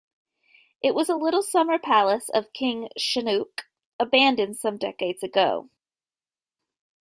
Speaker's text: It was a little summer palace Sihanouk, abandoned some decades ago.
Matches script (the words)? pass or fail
fail